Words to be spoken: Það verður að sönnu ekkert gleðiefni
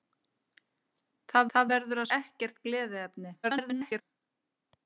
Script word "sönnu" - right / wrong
wrong